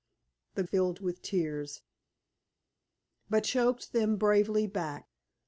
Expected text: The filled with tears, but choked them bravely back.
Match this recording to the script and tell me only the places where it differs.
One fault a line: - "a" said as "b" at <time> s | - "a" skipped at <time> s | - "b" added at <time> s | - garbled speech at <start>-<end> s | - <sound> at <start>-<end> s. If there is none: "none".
none